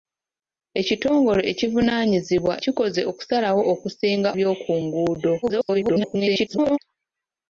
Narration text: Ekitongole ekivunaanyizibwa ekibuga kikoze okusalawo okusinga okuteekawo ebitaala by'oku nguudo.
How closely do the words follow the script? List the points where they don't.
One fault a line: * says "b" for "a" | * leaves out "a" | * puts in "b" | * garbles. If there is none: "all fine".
* leaves out "ekibuga"
* leaves out "okuteekawo ebitaala"
* garbles